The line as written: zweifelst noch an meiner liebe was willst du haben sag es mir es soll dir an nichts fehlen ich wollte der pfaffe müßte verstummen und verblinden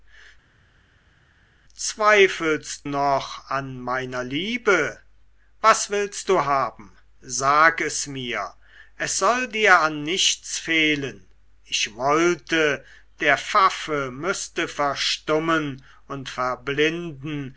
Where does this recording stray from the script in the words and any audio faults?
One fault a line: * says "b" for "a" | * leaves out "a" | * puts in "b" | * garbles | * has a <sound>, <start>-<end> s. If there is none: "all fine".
all fine